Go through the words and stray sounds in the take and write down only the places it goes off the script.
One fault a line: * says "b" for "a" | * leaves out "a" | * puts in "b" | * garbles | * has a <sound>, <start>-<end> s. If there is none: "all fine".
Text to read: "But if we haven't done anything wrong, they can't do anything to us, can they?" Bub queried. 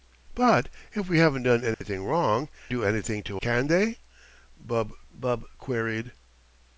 * has a dropout, 1.7-1.8 s
* leaves out "they can't"
* leaves out "us"
* puts in "bub"